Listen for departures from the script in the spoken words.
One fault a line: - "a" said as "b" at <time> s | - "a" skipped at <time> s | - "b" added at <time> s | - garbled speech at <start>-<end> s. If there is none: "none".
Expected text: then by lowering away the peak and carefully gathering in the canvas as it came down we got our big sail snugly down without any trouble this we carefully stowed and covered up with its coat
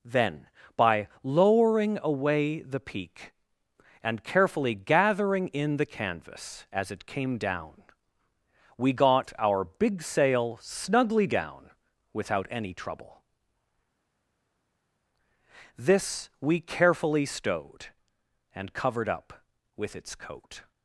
none